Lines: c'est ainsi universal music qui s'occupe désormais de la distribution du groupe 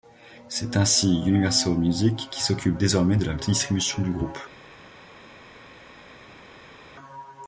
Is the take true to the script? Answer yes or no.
yes